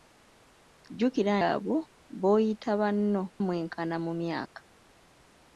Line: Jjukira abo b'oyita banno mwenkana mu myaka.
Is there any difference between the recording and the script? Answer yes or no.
no